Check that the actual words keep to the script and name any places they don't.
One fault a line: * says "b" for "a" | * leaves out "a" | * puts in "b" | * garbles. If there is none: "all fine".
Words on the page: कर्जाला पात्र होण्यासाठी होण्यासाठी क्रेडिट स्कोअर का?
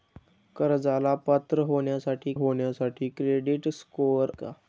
all fine